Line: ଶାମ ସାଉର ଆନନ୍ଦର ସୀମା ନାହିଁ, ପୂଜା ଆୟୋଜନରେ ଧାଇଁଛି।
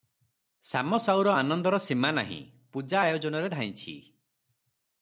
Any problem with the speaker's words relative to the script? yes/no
no